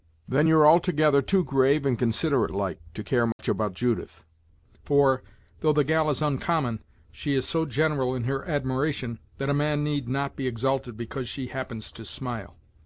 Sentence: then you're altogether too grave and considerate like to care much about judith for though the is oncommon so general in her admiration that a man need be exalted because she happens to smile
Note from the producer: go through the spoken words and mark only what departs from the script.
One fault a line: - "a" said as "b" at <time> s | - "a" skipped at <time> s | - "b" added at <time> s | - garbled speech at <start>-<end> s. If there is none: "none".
- "gal" added at 5.8 s
- "she is" added at 7.1 s
- "not" added at 10.1 s